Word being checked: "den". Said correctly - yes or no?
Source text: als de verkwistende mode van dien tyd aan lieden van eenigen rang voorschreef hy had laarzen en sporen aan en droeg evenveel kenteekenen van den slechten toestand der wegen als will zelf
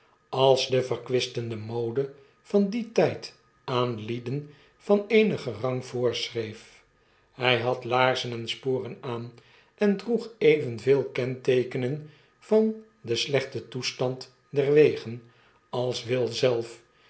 yes